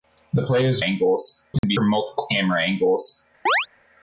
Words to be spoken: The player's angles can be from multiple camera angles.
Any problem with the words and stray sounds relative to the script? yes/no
yes